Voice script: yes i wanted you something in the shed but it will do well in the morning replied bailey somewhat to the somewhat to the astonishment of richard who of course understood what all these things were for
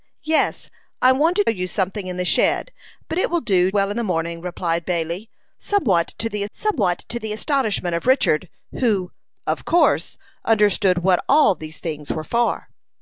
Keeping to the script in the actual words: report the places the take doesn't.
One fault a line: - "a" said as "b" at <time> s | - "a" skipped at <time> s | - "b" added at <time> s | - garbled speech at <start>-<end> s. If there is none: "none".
none